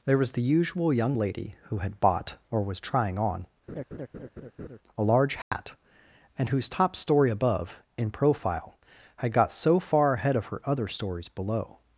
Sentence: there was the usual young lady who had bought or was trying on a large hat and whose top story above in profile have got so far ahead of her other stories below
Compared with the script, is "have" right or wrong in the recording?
wrong